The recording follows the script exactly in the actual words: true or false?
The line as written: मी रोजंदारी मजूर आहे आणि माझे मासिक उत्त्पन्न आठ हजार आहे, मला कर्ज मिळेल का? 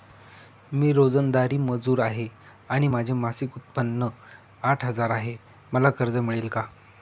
true